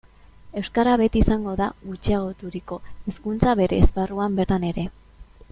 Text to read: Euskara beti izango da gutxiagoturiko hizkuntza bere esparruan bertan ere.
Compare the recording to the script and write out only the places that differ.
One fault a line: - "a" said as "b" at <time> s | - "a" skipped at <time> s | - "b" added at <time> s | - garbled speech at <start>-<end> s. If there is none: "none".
none